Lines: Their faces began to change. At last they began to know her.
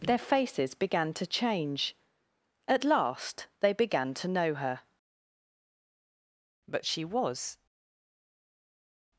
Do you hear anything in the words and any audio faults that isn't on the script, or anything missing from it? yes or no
yes